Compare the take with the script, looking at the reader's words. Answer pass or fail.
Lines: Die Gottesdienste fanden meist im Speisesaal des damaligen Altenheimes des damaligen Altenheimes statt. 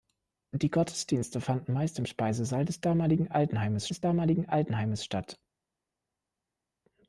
pass